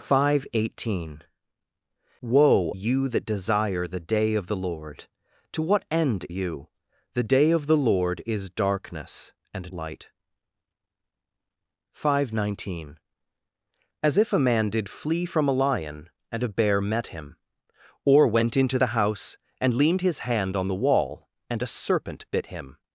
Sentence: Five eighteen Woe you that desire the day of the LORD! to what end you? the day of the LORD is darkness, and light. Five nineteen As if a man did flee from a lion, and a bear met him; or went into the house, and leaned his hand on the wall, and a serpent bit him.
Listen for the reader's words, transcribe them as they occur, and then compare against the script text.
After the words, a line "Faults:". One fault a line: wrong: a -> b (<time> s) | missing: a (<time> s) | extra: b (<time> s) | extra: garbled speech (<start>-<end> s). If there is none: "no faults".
Five eighteen Woe you that desire the day of the LORD! to what end you? the day of the LORD is darkness, and light. Five nineteen As if a man did flee from a lion, and a bear met him; or went into the house, and leaned his hand on the wall, and a serpent bit him.
Faults:
no faults